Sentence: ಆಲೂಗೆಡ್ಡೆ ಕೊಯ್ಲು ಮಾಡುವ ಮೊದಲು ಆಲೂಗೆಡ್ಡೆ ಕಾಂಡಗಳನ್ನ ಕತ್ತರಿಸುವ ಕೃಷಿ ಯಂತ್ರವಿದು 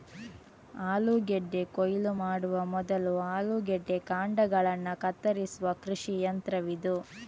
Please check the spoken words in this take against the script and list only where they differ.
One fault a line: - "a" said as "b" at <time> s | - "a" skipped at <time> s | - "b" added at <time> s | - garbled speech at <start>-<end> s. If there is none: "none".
none